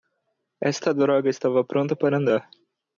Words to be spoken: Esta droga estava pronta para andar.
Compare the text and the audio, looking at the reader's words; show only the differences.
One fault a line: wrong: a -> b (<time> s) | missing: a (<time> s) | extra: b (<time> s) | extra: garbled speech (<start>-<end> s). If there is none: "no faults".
no faults